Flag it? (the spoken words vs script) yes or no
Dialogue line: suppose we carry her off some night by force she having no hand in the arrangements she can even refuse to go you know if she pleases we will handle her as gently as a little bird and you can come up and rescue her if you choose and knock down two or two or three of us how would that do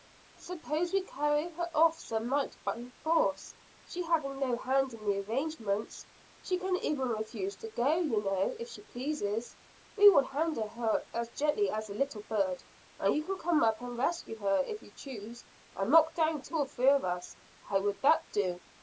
yes